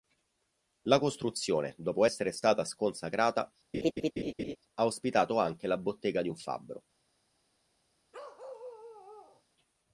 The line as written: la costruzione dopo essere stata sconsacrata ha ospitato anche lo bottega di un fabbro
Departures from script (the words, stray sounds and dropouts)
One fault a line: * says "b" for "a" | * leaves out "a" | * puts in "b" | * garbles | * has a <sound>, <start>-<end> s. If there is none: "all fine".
* has a laugh, 3.7-4.6 s
* says "la" for "lo"
* has a bark, 8.1-9.4 s